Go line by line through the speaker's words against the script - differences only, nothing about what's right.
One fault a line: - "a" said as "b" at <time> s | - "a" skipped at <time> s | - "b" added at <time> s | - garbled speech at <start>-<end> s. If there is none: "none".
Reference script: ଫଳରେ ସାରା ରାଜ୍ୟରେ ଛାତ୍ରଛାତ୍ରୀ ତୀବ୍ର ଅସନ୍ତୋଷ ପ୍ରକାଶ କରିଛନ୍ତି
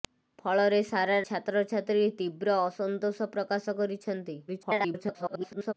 - "ରାଜ୍ୟରେ" skipped at 1.2 s
- garbled speech at 4.5-5.7 s